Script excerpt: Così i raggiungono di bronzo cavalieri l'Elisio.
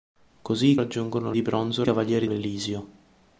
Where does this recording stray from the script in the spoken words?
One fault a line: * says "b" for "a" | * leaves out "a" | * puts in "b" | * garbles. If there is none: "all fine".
all fine